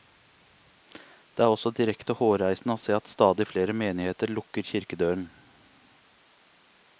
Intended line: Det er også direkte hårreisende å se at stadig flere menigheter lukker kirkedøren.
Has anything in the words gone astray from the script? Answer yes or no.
no